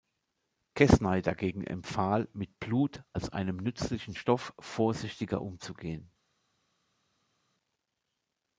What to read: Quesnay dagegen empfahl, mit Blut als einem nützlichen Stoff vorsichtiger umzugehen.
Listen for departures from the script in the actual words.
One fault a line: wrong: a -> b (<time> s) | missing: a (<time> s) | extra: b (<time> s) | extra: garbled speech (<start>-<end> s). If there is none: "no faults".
no faults